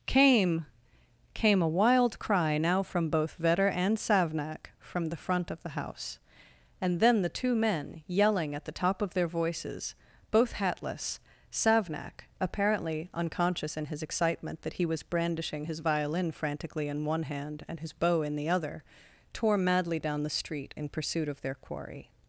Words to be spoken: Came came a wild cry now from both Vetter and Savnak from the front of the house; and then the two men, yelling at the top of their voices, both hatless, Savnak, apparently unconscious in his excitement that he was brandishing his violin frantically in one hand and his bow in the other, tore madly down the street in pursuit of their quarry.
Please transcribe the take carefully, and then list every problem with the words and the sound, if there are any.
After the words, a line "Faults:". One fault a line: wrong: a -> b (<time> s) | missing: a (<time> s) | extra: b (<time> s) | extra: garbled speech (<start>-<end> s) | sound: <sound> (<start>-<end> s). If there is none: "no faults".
Came came a wild cry now from both Vetter and Savnak from the front of the house; and then the two men, yelling at the top of their voices, both hatless, Savnak, apparently unconscious in his excitement that he was brandishing his violin frantically in one hand and his bow in the other, tore madly down the street in pursuit of their quarry.
Faults:
no faults